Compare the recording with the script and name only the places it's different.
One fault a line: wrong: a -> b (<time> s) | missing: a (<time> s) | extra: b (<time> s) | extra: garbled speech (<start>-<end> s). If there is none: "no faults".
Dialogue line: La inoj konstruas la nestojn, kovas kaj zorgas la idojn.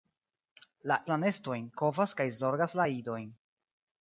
missing: inoj konstruas (1.0 s)